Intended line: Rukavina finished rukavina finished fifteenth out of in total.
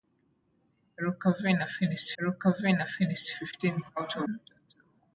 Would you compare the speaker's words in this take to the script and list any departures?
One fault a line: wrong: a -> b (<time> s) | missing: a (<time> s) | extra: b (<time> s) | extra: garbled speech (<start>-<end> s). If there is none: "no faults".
no faults